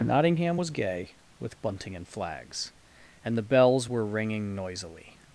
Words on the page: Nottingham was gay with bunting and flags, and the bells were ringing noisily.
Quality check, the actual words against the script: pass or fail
pass